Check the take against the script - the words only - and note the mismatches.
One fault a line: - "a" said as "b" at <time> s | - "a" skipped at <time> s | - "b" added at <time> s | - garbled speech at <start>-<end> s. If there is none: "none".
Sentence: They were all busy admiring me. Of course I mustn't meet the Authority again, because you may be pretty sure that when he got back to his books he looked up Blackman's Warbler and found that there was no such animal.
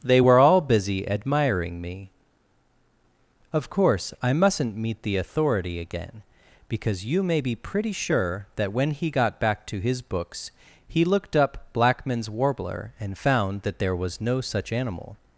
none